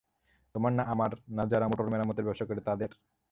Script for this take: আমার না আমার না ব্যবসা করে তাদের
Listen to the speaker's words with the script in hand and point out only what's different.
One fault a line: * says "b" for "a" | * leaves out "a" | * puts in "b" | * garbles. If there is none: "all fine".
* says "তোমার" for "আমার"
* puts in "যারা মোটর মেরামতের"